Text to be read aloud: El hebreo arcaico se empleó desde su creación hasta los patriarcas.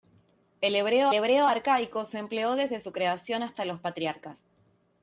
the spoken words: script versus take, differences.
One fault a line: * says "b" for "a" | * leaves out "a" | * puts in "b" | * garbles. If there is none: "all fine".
* puts in "hebreo"